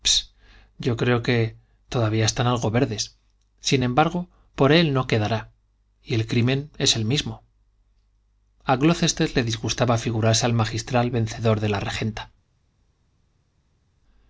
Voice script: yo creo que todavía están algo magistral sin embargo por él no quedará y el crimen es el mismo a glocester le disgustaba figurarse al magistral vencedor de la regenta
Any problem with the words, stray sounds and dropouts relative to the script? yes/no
yes